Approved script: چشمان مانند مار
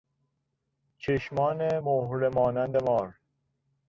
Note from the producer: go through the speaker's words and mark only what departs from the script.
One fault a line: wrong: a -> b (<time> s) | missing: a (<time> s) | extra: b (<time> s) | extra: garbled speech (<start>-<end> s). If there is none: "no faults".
extra: مهره (1.8 s)